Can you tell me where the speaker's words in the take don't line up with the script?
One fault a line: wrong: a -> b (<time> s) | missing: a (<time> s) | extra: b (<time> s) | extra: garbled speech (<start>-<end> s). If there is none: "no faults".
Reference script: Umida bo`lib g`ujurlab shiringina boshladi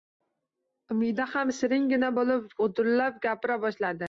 extra: ham shiringina (1.4 s)
wrong: shiringina -> gapira (3.3 s)